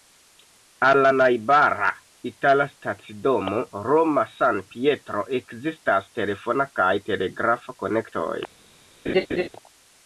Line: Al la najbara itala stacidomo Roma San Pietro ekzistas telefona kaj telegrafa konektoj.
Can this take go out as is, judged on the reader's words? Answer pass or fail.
pass